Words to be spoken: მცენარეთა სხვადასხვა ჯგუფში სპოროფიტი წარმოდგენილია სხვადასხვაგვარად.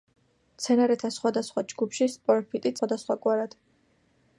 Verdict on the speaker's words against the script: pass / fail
fail